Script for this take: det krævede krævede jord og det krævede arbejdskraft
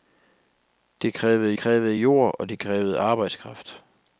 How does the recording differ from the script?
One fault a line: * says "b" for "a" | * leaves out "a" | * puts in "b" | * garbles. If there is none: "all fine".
all fine